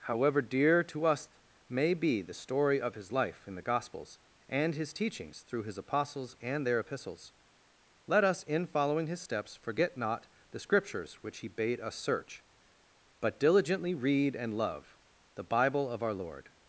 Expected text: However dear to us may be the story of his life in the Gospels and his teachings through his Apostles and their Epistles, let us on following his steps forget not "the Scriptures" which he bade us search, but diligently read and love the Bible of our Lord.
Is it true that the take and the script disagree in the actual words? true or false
true